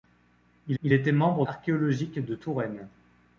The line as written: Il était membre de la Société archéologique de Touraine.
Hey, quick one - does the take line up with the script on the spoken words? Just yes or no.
no